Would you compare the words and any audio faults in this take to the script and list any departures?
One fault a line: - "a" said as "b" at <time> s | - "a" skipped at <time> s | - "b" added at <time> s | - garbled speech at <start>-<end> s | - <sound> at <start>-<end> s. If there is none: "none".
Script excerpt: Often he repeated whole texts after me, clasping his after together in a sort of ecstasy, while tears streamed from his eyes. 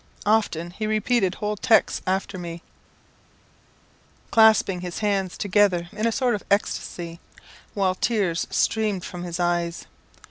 - "after" said as "hands" at 5.0 s